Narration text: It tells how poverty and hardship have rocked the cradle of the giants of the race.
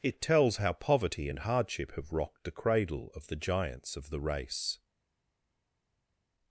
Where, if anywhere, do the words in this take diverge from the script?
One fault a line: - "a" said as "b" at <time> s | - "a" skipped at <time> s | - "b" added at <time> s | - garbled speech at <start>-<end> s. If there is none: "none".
none